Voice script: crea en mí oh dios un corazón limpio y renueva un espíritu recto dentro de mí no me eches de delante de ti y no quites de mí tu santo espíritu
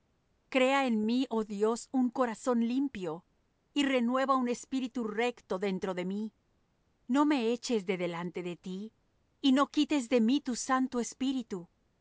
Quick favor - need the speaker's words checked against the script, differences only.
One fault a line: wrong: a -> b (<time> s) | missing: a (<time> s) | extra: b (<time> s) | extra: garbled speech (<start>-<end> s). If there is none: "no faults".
no faults